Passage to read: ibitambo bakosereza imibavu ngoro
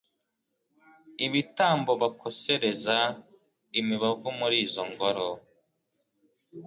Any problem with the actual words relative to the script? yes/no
yes